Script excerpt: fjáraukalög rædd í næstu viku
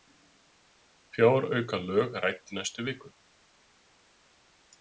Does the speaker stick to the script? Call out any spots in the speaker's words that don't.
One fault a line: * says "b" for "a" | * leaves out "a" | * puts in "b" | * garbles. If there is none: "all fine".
all fine